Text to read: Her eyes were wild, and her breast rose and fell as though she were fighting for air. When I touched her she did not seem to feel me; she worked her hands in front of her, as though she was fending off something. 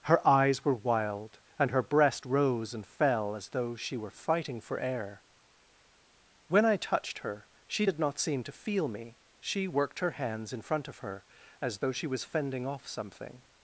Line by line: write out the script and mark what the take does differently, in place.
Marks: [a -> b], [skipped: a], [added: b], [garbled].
Her eyes were wild, and her breast rose and fell as though she were fighting for air. When I touched her she did not seem to feel me; she worked her hands in front of her, as though she was fending off something.